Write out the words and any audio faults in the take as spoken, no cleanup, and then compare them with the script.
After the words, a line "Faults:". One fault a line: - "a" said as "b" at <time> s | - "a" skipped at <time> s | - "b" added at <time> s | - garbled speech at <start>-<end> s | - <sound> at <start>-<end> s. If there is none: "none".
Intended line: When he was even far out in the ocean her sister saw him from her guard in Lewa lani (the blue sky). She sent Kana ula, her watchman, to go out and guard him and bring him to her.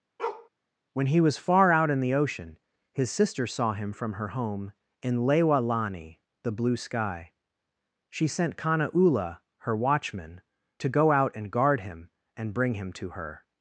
When he was far out in the ocean his sister saw him from her home in Lewa lani (the blue sky). She sent Kana ula, her watchman, to go out and guard him and bring him to her.
Faults:
- bark at 0.2-0.5 s
- "even" skipped at 1.4 s
- "her" said as "his" at 2.9 s
- "guard" said as "home" at 4.3 s